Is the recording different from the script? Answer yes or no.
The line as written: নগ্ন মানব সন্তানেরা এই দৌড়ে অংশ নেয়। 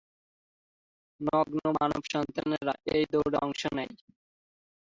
no